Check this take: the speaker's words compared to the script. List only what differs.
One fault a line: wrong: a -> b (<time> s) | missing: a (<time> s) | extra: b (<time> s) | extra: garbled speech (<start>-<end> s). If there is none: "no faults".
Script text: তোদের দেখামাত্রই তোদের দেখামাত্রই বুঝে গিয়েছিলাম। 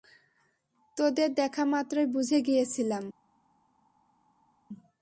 missing: তোদের দেখামাত্রই (2.1 s)